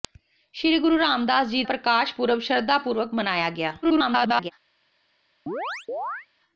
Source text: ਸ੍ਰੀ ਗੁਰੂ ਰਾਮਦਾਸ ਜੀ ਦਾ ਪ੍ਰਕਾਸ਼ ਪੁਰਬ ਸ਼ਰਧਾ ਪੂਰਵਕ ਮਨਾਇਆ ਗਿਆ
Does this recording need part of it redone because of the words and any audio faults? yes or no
yes